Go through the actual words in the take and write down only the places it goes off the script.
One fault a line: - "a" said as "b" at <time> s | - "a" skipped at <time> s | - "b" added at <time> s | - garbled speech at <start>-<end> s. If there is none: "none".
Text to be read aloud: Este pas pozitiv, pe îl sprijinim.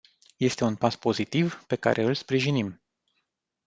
- "un" added at 0.6 s
- "care" added at 1.8 s